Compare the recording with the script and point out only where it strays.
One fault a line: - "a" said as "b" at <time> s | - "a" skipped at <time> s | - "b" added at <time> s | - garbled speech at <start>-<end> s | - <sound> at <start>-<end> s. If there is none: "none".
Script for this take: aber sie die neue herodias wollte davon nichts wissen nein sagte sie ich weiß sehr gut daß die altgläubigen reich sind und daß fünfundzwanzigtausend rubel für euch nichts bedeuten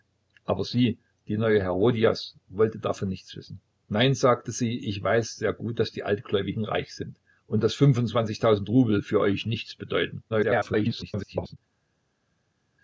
- garbled speech at 10.3-11.6 s